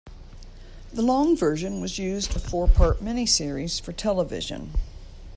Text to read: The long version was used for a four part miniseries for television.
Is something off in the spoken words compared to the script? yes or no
yes